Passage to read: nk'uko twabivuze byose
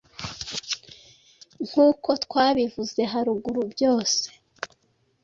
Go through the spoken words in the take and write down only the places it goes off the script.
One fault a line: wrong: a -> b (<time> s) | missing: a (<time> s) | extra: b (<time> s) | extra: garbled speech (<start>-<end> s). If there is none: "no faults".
extra: haruguru (3.1 s)